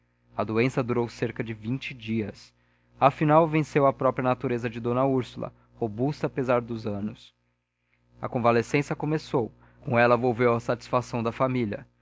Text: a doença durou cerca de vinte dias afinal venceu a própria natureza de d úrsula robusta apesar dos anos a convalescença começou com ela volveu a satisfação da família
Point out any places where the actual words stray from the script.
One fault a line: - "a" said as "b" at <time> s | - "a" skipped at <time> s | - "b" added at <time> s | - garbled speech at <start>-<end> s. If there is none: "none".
none